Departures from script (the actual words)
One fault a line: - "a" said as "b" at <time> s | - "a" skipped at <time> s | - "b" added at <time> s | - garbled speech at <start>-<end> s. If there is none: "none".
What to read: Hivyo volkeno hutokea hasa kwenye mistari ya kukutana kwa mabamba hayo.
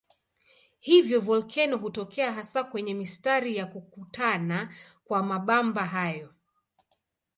none